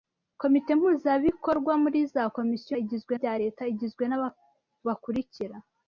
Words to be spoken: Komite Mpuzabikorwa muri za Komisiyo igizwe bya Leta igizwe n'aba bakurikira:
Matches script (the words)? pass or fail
pass